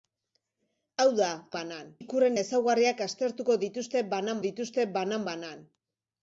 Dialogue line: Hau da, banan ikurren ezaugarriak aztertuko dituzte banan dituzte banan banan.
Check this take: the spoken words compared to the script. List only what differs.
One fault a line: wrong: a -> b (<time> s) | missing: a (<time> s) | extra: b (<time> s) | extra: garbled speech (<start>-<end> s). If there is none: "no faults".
no faults